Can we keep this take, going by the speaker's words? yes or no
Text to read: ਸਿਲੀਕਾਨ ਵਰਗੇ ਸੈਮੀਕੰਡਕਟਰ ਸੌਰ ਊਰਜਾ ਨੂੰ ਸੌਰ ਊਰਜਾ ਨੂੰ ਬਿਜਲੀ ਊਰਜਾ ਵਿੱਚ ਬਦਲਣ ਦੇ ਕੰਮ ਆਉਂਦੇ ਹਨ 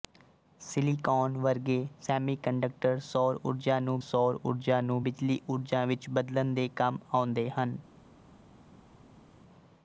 yes